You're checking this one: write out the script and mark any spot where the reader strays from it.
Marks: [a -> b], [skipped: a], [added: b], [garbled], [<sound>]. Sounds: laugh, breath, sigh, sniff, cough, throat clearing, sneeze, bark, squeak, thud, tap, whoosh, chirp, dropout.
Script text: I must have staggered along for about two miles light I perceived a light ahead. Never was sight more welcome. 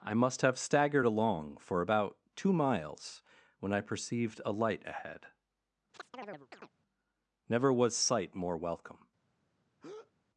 I must have staggered along for about two miles [light -> when] I perceived a light ahead. [chirp] Never was sight more welcome. [breath]